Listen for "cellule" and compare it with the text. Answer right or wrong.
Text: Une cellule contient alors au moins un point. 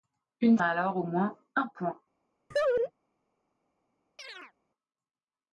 wrong